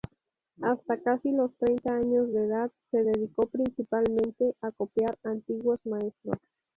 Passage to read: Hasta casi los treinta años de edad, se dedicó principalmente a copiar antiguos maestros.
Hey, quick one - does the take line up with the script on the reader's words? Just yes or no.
yes